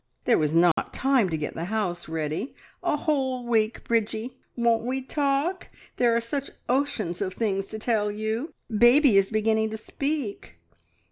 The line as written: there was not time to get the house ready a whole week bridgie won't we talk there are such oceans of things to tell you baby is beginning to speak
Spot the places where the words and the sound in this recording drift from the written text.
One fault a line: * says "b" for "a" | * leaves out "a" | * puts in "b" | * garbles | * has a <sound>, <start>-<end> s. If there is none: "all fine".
* has a dropout, 0.7-0.8 s